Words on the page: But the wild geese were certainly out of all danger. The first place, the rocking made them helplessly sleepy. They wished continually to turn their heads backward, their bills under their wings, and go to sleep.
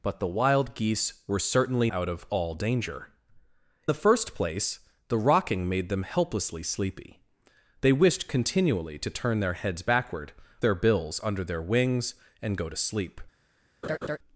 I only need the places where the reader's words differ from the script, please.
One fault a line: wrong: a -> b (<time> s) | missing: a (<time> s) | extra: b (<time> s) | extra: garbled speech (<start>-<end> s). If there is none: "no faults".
no faults